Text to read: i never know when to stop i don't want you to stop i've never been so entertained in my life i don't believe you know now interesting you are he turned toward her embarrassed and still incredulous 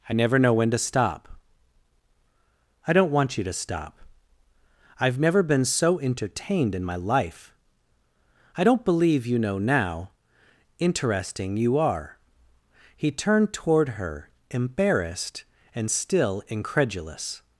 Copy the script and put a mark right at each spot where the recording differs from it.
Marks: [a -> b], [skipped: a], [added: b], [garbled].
i never know when to stop i don't want you to stop i've never been so entertained in my life i don't believe you know now interesting you are he turned toward her embarrassed and still incredulous